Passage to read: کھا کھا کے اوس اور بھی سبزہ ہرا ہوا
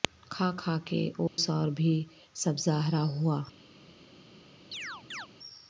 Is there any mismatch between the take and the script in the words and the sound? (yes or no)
yes